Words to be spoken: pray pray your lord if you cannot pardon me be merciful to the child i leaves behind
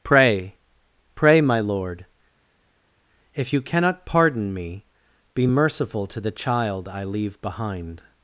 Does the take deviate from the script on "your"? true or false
true